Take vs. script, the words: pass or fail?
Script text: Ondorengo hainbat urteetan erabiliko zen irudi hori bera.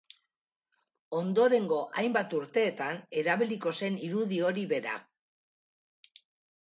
pass